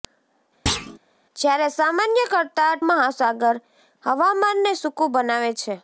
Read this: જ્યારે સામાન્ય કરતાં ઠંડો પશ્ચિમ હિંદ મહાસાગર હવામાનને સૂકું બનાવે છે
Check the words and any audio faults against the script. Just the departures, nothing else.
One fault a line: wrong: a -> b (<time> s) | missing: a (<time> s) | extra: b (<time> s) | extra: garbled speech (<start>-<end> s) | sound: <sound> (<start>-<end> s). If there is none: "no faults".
sound: thud (0.7-1.0 s)
missing: ઠંડો પશ્ચિમ હિંદ (2.8 s)